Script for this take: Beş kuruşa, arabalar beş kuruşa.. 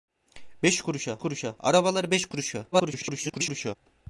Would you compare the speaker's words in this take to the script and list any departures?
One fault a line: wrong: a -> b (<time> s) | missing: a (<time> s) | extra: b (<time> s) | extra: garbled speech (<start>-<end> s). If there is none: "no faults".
extra: kuruşa (1.2 s)
extra: garbled speech (2.7-3.8 s)